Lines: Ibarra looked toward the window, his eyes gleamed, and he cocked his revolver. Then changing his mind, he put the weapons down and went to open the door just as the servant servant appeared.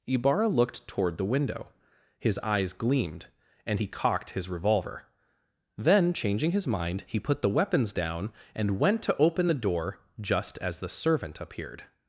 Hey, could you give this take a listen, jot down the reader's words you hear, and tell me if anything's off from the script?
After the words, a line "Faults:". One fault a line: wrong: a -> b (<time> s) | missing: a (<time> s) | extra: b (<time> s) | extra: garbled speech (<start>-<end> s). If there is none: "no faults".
Ibarra looked toward the window, his eyes gleamed, and he cocked his revolver. Then changing his mind, he put the weapons down and went to open the door just as the servant appeared.
Faults:
missing: servant (11.4 s)